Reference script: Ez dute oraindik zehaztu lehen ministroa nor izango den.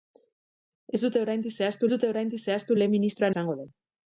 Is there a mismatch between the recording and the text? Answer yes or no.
yes